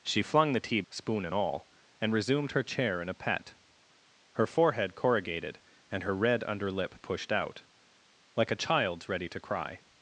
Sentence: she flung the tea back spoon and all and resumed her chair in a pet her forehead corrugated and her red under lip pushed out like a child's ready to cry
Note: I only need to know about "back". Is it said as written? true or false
false